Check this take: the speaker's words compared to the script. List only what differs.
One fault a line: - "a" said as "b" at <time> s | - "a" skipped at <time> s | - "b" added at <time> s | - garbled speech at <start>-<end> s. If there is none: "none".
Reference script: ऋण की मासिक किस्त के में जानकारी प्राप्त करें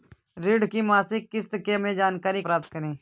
none